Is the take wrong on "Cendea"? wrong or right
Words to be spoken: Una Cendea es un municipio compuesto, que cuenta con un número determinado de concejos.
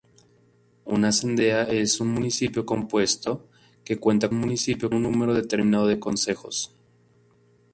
right